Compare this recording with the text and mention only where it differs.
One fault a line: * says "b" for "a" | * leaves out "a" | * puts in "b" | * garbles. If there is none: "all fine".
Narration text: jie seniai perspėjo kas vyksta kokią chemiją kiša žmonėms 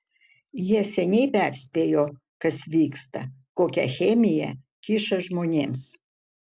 all fine